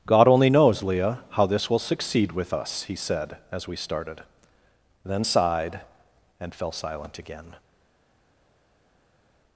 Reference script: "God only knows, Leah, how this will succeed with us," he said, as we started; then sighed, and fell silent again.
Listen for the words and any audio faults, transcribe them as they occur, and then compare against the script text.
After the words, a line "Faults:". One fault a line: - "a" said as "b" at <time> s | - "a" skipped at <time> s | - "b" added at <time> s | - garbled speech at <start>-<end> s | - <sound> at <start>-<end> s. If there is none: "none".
"God only knows, Leah, how this will succeed with us," he said, as we started; then sighed, and fell silent again.
Faults:
none